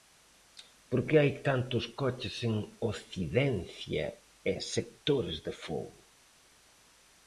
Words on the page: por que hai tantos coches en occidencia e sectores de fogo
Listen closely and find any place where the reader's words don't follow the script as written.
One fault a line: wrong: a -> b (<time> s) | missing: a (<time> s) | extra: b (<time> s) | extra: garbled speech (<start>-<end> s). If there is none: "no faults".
no faults